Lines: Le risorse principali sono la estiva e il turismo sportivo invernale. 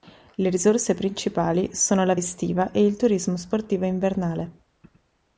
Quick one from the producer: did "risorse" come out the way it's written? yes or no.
yes